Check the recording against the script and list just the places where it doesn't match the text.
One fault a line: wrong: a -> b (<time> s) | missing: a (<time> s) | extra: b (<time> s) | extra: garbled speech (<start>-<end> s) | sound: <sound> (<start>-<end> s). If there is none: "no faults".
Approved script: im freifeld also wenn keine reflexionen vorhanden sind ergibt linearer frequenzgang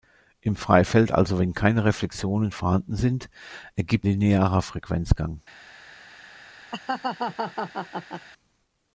sound: laugh (6.7-8.3 s)